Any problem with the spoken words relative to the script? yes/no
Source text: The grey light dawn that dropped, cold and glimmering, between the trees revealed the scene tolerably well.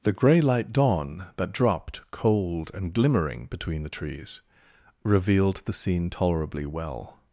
no